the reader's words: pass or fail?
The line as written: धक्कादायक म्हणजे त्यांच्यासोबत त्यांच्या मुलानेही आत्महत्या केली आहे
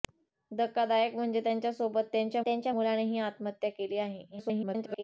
fail